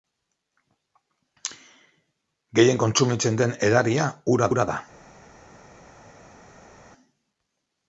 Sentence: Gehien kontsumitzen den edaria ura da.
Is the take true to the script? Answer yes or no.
no